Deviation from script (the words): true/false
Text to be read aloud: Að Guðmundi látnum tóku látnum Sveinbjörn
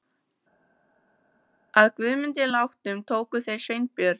true